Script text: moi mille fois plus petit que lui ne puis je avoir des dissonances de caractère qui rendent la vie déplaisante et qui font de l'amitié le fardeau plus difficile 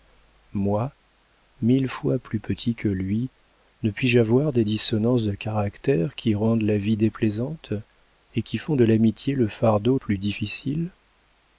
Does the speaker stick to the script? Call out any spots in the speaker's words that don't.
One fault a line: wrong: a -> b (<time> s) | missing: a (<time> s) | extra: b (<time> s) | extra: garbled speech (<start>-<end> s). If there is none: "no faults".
no faults